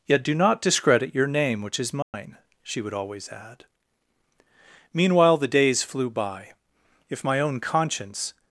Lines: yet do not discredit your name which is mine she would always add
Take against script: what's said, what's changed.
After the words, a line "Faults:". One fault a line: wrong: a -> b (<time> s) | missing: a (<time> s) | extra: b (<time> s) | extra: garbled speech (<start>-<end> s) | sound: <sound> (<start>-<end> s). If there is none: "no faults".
yet do not discredit your name which is mine she would always add meanwhile the days flew by if my own conscience
Faults:
sound: dropout (2.0-2.1 s)
extra: meanwhile the days flew by if my own conscience (4.9 s)